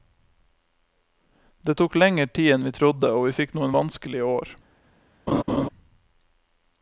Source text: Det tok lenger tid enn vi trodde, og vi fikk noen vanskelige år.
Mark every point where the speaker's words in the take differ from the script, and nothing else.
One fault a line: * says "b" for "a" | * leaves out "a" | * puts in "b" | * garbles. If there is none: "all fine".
all fine